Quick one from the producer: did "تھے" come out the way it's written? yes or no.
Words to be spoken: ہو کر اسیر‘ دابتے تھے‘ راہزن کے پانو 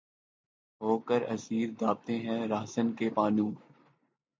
no